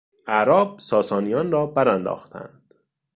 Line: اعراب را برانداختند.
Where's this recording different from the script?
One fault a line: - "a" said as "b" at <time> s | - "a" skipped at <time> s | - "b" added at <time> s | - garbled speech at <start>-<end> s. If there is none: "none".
- "ساسانیان" added at 0.8 s